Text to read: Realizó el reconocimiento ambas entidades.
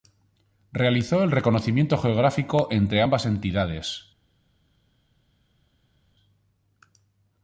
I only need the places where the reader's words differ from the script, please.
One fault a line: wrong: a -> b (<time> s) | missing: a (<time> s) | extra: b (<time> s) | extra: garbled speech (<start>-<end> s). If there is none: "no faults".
extra: geográfico entre (1.9 s)